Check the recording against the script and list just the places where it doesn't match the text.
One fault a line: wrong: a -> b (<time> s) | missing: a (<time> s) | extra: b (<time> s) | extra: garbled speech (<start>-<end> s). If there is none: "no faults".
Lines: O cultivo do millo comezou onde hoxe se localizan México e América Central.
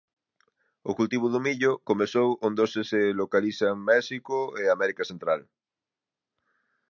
no faults